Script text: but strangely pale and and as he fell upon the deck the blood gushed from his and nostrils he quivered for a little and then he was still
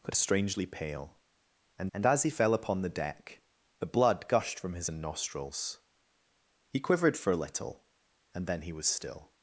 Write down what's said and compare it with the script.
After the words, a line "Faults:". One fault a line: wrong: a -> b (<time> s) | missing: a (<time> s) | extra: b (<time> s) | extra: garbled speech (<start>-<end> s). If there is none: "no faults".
but strangely pale and and as he fell upon the deck the blood gushed from his and nostrils he quivered for a little and then he was still
Faults:
no faults